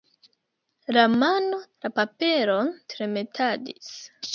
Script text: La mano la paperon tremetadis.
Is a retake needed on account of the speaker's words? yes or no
no